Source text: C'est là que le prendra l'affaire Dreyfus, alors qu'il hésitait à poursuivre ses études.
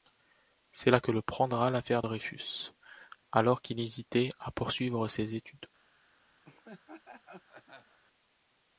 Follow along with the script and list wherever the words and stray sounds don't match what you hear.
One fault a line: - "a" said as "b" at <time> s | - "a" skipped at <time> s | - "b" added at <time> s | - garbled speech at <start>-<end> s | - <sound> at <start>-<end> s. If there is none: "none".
- laugh at 6.4-8.0 s